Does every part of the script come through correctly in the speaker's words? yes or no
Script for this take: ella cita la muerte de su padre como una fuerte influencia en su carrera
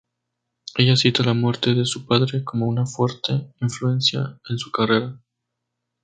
yes